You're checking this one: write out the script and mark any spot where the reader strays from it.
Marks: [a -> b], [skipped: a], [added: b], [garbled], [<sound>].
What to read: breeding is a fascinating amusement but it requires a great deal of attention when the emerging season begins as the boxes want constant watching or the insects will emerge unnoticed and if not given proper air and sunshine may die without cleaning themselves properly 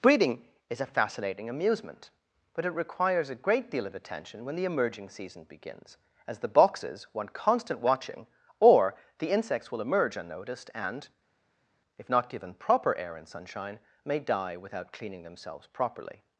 breeding is a fascinating amusement but it requires a great deal of attention when the emerging season begins as the boxes want constant watching or the insects will emerge unnoticed and if not given proper air and sunshine may die without cleaning themselves properly